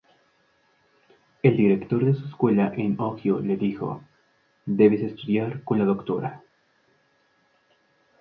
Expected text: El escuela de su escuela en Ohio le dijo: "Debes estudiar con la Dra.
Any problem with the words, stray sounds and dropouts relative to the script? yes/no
yes